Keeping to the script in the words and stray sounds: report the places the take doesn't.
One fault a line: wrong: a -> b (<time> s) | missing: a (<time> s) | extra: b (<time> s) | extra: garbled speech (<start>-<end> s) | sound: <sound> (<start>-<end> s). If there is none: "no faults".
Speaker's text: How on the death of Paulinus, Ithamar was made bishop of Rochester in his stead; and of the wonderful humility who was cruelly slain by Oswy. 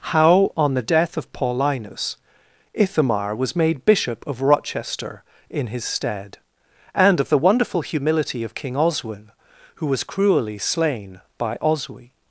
extra: of King Oswin (8.4 s)